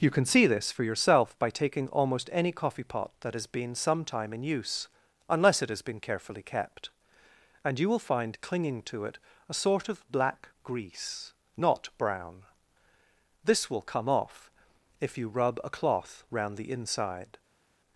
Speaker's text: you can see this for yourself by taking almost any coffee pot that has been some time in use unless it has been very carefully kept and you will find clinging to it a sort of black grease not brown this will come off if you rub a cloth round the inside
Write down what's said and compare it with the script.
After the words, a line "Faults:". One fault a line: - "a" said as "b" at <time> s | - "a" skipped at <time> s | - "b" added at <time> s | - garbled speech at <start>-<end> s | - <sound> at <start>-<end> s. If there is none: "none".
you can see this for yourself by taking almost any coffee pot that has been some time in use unless it has been carefully kept and you will find clinging to it a sort of black grease not brown this will come off if you rub a cloth round the inside
Faults:
- "very" skipped at 6.0 s